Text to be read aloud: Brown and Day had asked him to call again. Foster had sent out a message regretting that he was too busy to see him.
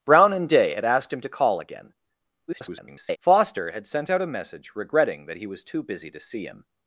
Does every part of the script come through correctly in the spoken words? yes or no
no